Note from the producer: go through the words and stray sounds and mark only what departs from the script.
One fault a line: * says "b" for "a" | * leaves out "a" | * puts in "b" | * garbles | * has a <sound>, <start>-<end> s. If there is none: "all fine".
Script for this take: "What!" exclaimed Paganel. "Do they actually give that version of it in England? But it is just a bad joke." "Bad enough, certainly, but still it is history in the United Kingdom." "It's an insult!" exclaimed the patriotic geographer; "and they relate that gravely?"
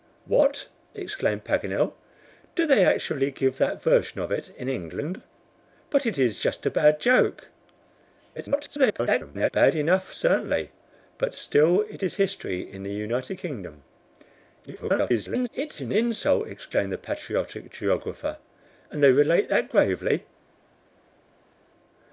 * garbles
* garbles